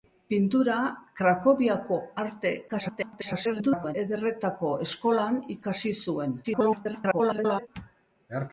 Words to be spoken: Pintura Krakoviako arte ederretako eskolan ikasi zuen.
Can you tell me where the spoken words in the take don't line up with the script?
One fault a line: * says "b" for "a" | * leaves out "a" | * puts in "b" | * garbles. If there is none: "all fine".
* garbles
* garbles